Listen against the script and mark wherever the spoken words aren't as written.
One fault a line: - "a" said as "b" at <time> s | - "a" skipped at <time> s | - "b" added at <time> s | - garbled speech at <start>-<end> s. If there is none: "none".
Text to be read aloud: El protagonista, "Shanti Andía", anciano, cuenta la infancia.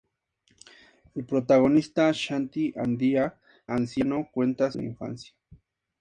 none